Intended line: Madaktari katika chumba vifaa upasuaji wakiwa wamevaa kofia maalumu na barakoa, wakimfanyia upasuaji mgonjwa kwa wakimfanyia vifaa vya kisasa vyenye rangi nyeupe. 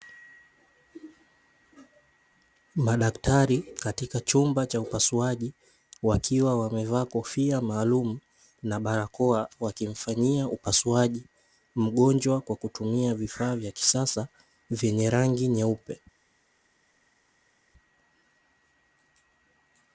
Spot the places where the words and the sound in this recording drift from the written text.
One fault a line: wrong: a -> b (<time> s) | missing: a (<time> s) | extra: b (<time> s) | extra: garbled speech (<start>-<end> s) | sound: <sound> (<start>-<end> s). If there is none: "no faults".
wrong: vifaa -> cha (4.7 s)
wrong: wakimfanyia -> kutumia (12.6 s)